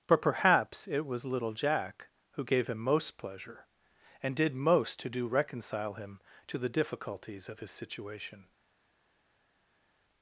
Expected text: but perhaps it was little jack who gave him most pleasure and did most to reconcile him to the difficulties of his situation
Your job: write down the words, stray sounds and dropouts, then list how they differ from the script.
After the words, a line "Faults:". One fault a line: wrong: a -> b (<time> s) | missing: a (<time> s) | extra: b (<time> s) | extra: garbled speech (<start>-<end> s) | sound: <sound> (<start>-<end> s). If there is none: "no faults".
but perhaps it was little jack who gave him most pleasure and did most to do reconcile him to the difficulties of his situation
Faults:
extra: do (5.1 s)